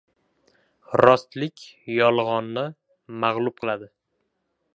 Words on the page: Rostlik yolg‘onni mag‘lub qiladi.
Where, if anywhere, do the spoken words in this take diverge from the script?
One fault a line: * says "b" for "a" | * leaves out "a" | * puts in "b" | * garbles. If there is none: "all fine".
all fine